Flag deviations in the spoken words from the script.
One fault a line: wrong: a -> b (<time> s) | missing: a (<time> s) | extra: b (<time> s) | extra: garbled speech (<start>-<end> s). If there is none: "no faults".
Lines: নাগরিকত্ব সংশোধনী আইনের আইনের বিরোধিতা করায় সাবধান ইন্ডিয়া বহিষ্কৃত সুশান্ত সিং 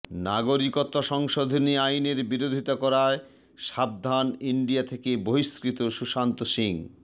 missing: আইনের (2.2 s)
extra: থেকে (4.8 s)